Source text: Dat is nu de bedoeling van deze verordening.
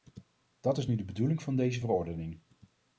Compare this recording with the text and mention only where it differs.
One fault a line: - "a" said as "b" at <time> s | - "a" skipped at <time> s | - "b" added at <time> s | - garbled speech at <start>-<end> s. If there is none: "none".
none